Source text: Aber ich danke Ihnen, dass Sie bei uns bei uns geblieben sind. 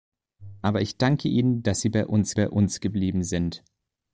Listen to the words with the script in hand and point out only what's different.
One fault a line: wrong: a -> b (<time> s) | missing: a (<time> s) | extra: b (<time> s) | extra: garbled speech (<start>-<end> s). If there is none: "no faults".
no faults